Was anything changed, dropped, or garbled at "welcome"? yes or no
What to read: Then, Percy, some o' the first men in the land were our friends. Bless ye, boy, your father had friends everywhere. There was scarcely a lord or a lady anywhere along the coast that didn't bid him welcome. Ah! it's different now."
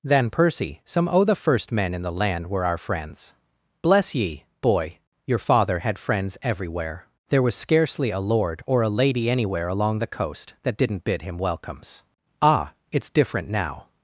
yes